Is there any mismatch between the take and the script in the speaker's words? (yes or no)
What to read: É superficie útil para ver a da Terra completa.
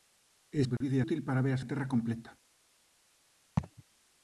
no